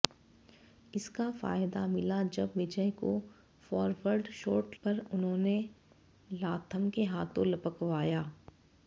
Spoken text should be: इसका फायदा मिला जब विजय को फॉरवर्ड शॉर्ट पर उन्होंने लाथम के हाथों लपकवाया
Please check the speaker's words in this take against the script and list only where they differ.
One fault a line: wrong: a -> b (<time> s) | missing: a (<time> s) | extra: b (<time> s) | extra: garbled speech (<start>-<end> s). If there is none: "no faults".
no faults